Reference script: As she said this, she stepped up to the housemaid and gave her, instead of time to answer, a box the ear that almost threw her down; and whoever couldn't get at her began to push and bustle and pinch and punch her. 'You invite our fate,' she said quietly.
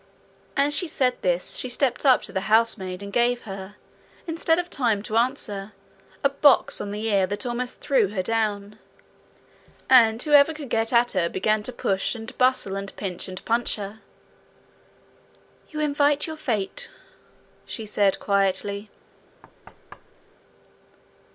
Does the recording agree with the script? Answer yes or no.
no